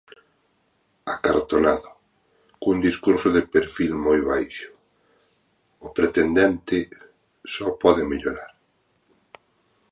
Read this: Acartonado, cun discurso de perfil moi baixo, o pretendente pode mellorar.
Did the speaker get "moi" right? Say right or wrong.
right